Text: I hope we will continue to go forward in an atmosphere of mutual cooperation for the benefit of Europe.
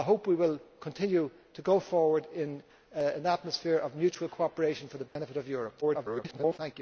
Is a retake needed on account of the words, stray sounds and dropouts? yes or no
yes